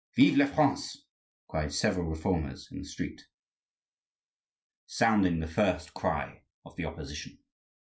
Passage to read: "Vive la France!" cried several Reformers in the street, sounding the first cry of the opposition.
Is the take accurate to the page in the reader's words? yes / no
yes